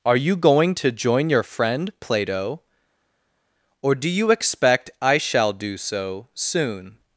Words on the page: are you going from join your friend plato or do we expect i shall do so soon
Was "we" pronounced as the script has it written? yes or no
no